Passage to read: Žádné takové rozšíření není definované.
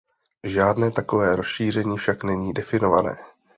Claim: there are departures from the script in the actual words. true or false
true